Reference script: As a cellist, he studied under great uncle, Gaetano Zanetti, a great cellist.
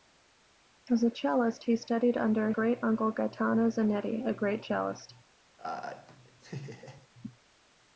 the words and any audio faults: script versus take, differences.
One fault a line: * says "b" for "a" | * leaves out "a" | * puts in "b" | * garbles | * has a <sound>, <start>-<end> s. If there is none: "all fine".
* has a laugh, 5.6-7.1 s